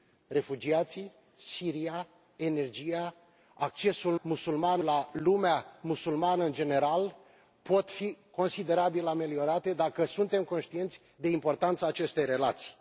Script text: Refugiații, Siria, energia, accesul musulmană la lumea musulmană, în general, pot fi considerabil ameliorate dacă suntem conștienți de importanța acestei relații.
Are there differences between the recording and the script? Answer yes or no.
no